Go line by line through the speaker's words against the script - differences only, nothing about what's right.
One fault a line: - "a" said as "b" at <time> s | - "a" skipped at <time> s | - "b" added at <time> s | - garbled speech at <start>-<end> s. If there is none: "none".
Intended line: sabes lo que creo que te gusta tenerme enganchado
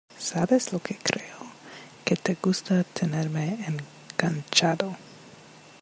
none